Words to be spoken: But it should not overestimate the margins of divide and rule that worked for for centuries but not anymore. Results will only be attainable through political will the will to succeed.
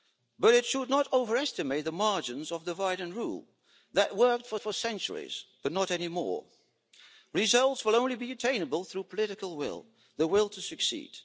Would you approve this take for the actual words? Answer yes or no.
yes